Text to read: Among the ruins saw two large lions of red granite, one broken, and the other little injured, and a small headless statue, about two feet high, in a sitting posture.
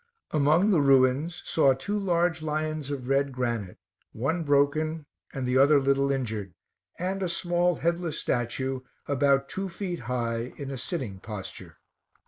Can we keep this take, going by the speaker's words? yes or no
yes